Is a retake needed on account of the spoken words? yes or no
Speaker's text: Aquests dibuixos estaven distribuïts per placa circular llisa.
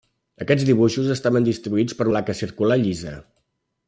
no